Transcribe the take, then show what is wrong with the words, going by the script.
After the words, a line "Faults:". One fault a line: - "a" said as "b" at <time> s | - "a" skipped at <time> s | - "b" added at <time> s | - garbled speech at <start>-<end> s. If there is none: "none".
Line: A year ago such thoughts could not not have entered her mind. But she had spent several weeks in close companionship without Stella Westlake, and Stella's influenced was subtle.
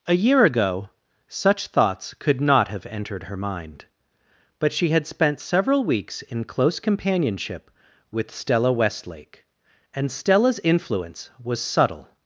A year ago such thoughts could not have entered her mind. But she had spent several weeks in close companionship with Stella Westlake, and Stella's influence was subtle.
Faults:
- "not" skipped at 2.7 s
- "without" said as "with" at 8.1 s
- "influenced" said as "influence" at 10.6 s